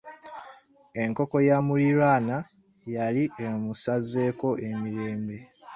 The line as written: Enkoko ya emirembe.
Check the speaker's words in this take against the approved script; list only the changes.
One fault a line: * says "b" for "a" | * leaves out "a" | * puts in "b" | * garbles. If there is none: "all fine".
* puts in "muliraanwa yali emusazeeko"